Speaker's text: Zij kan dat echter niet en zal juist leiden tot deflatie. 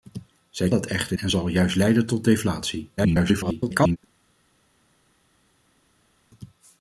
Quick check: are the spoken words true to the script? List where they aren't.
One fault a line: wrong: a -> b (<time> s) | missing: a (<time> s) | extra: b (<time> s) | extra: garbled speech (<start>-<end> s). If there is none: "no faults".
missing: kan (0.7 s)
missing: niet (1.2 s)
extra: garbled speech (3.0-4.0 s)